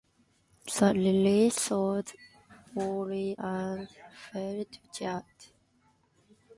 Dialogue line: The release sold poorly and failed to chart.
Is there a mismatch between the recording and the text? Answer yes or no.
no